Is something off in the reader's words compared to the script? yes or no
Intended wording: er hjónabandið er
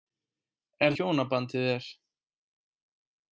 no